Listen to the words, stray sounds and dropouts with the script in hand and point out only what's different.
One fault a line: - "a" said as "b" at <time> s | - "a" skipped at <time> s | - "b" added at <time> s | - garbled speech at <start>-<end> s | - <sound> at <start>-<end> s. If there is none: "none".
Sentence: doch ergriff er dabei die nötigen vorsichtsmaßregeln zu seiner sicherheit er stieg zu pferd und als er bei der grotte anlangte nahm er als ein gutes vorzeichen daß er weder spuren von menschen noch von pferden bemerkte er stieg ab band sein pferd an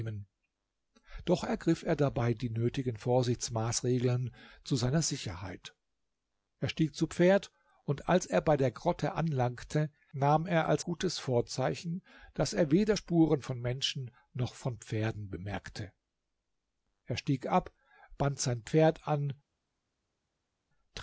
- "ein" skipped at 10.8 s